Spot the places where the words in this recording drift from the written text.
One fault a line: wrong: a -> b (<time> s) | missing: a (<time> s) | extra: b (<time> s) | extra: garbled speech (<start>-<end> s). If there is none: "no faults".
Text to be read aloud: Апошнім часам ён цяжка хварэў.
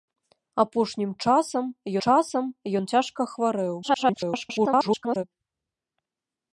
extra: часам (2.1 s)
extra: garbled speech (3.8-5.2 s)